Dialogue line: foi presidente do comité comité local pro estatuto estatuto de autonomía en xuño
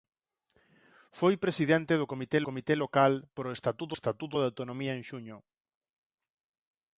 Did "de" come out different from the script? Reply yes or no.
no